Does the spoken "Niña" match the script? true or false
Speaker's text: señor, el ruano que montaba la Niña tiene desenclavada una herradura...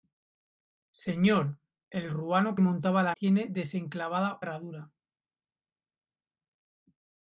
false